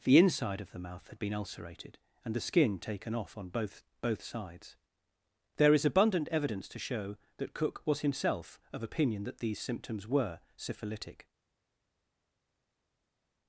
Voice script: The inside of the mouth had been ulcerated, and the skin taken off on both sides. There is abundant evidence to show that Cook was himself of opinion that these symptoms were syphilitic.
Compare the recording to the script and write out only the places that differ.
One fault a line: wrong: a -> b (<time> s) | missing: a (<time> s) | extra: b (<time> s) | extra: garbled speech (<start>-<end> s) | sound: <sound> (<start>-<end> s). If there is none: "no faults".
extra: both (4.0 s)